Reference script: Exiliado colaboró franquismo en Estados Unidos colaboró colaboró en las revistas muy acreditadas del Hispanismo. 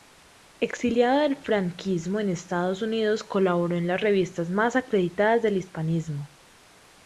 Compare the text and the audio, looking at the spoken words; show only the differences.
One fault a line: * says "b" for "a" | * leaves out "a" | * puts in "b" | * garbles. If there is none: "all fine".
* says "del" for "colaboró"
* leaves out "colaboró"
* says "más" for "muy"